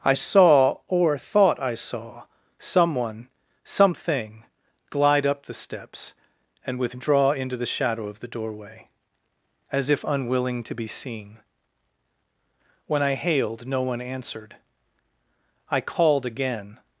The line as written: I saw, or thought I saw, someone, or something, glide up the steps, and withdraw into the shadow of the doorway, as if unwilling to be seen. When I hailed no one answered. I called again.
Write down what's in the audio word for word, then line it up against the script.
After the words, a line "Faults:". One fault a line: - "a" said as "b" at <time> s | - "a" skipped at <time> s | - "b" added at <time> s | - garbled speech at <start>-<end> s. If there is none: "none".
I saw, or thought I saw, someone, something, glide up the steps, and withdraw into the shadow of the doorway, as if unwilling to be seen. When I hailed no one answered. I called again.
Faults:
- "or" skipped at 3.3 s